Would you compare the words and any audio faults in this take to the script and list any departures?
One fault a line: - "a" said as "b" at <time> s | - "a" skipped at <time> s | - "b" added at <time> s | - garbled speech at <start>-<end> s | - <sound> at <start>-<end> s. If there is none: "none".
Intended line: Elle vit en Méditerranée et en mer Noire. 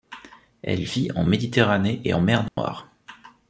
- dropout at 2.5-2.6 s